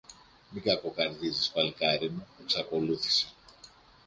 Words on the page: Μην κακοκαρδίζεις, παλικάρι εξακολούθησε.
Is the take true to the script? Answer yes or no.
no